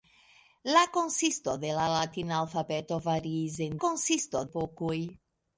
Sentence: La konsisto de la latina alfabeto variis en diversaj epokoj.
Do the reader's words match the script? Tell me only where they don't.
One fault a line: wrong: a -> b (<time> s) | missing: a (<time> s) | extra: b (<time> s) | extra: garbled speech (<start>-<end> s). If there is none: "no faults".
wrong: diversaj -> konsisto (3.8 s)